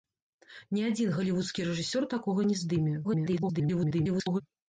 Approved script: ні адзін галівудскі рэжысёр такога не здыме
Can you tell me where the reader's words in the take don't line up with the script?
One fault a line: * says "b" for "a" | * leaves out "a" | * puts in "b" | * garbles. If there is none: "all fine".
* garbles